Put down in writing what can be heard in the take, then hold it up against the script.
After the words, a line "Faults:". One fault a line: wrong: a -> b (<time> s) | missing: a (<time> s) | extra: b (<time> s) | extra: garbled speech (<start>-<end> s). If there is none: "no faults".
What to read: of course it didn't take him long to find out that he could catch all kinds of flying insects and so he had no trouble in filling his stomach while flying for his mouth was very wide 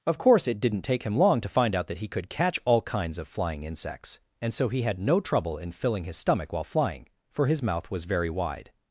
of course it didn't take him long to find out that he could catch all kinds of flying insects and so he had no trouble in filling his stomach while flying for his mouth was very wide
Faults:
no faults